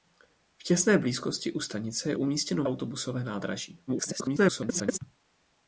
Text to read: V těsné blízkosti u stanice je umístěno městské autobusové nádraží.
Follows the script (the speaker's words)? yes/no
no